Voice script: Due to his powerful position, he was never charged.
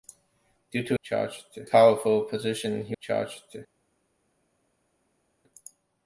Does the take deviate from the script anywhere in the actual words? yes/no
yes